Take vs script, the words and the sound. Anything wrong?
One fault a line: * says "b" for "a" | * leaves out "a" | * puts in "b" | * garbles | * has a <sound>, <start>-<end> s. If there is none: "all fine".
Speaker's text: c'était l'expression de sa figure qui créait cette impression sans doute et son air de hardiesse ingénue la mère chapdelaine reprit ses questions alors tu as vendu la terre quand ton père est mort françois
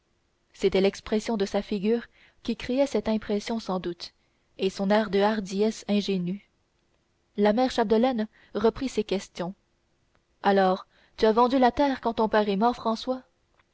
all fine